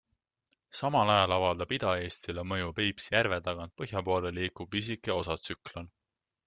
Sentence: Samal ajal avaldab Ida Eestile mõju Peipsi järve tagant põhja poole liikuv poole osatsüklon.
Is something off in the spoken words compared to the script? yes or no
yes